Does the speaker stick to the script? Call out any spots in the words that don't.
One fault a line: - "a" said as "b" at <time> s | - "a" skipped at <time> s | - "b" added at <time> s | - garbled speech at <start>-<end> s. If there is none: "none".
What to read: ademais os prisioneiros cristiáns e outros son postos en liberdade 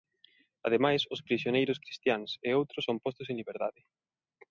none